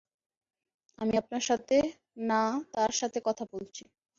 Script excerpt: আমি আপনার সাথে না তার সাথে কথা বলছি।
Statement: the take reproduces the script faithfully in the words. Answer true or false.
true